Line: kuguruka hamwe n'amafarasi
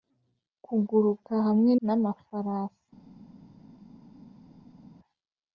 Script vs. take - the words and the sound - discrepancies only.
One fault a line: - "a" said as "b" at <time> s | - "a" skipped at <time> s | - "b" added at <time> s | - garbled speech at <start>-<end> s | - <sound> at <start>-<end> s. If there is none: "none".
none